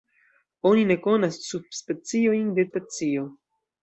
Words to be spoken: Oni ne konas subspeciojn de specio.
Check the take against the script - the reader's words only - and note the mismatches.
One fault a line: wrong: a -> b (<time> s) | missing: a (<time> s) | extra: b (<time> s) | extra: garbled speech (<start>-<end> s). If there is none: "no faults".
no faults